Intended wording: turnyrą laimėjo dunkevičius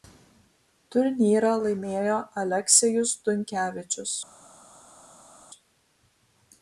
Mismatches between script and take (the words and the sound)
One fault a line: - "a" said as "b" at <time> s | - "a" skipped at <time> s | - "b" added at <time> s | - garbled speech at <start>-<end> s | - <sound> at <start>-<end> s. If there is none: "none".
- "aleksejus" added at 2.4 s